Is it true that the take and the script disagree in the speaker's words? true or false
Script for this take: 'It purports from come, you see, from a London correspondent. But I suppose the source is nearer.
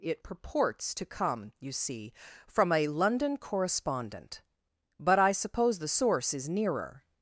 true